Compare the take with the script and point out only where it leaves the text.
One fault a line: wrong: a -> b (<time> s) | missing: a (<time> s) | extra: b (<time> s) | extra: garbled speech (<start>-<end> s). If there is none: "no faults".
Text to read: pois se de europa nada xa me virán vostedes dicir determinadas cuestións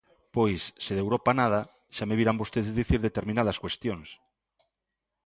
no faults